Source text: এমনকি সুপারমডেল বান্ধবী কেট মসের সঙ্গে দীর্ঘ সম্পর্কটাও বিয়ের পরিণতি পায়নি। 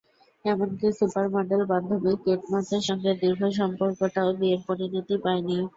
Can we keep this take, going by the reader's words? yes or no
yes